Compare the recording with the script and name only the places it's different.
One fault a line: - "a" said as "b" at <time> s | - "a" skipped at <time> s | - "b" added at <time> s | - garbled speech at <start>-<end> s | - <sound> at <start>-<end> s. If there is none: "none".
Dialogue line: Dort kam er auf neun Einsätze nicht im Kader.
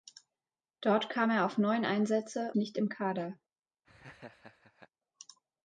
- laugh at 3.8-4.9 s